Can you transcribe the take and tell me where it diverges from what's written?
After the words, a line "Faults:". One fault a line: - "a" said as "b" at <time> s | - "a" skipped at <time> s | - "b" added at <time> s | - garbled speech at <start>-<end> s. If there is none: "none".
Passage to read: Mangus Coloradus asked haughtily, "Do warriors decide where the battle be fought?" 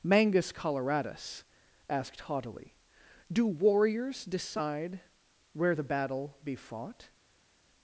Mangus Coloradus asked haughtily, "Do warriors decide where the battle be fought?"
Faults:
none